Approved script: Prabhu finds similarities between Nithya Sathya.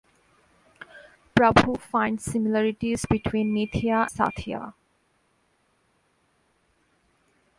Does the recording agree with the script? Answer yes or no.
yes